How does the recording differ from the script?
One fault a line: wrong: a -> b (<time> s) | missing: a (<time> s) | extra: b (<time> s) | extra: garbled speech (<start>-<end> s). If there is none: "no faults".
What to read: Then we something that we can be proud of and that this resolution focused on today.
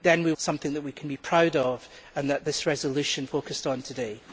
no faults